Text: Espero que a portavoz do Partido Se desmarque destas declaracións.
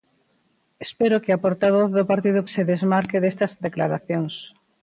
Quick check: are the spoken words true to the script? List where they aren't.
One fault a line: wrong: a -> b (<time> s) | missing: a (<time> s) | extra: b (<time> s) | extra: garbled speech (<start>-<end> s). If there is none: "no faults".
no faults